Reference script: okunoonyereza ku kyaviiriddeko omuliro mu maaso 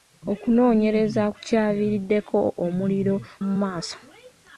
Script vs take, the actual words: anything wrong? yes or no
no